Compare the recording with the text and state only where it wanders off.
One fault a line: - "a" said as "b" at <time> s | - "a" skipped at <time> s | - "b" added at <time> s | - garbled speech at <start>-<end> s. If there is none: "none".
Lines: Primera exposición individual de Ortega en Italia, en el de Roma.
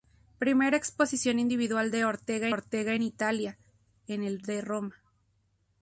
- "Ortega" added at 2.5 s